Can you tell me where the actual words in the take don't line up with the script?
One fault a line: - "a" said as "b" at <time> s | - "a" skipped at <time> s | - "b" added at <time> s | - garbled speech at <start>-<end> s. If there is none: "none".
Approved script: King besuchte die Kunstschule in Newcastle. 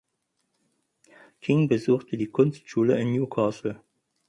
none